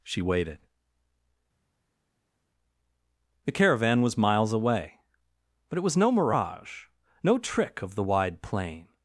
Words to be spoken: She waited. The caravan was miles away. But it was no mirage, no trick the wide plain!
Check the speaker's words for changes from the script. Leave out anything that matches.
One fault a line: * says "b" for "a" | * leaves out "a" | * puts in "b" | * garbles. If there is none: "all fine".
* puts in "of"